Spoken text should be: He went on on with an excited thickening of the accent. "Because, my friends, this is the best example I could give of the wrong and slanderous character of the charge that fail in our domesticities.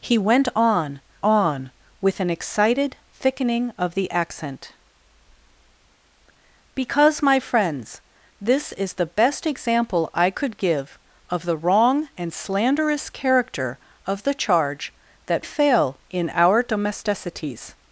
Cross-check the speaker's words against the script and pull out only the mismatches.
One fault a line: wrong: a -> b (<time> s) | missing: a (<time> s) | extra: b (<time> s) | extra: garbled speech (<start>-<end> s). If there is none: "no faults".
no faults